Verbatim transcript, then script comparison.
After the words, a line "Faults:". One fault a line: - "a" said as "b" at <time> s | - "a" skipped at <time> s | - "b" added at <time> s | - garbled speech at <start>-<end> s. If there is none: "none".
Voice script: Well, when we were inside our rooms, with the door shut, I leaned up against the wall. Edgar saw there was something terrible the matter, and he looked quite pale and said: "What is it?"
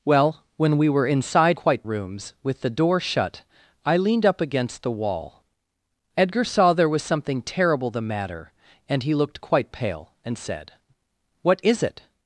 Well, when we were inside quite rooms, with the door shut, I leaned up against the wall. Edgar saw there was something terrible the matter, and he looked quite pale and said: "What is it?"
Faults:
- "our" said as "quite" at 1.6 s